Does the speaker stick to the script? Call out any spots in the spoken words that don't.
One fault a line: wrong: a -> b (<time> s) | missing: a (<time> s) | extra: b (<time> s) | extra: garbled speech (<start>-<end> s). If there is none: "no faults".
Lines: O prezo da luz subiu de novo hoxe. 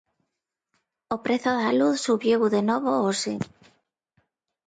no faults